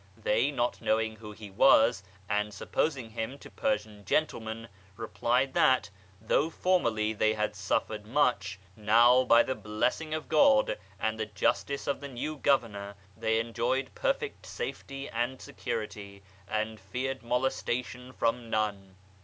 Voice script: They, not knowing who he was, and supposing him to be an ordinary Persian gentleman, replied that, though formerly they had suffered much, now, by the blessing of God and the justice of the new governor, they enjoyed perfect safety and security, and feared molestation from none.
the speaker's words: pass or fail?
fail